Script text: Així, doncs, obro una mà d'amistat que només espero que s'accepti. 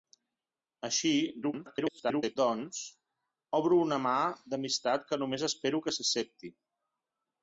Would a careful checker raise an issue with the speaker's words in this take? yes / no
yes